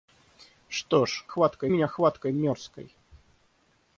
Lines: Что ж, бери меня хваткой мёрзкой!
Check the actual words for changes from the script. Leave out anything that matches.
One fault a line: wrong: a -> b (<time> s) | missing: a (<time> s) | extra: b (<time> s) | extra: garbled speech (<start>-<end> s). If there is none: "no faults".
wrong: бери -> хваткой (1.3 s)